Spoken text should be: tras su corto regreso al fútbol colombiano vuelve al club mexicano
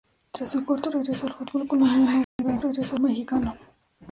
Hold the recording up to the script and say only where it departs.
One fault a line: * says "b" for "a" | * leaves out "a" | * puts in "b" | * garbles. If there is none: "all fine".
* says "regreso" for "club"